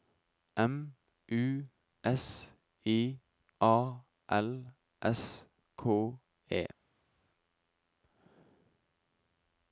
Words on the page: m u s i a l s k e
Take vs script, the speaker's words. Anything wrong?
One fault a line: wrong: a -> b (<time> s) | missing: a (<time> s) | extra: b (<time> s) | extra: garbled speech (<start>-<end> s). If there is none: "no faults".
no faults